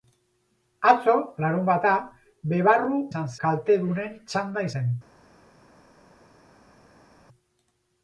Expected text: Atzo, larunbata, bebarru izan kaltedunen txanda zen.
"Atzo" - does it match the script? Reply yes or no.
yes